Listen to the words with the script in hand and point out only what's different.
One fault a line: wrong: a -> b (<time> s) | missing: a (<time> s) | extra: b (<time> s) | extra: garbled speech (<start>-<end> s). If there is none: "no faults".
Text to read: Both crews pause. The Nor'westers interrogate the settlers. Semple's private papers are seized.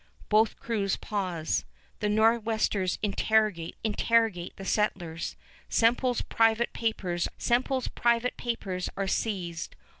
extra: interrogate (3.8 s)
extra: semple's private papers (7.4 s)